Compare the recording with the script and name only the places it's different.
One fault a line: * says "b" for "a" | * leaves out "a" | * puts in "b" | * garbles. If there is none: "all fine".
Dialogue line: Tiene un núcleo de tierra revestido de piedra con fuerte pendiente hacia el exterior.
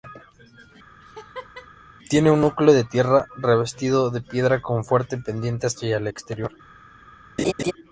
all fine